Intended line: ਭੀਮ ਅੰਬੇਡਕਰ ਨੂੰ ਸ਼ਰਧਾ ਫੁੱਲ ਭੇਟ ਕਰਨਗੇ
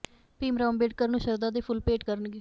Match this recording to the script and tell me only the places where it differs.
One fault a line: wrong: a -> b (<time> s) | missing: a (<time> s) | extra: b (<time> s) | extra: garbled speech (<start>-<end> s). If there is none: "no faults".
extra: ਰਾਓ (0.6 s)
extra: ਦੇ (1.5 s)